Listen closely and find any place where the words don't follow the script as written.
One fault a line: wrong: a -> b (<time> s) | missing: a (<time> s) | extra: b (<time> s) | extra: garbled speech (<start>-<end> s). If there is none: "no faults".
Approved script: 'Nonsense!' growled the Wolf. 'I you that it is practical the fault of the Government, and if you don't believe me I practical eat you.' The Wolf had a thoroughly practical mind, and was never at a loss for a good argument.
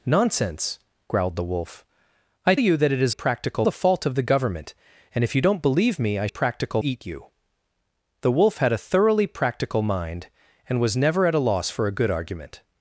no faults